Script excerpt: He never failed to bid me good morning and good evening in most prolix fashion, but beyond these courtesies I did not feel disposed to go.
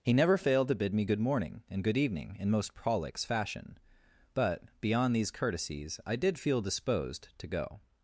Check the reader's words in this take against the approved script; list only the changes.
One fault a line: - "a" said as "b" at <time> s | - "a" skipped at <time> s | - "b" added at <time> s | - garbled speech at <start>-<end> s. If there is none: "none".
- "not" skipped at 6.4 s